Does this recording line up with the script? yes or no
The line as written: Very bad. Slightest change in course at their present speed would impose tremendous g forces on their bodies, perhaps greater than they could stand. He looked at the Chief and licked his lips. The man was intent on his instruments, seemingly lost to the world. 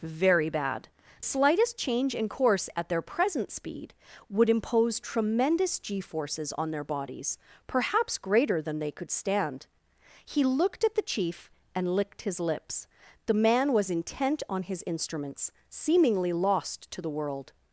yes